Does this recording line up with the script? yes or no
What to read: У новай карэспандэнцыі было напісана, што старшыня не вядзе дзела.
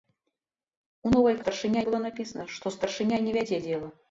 no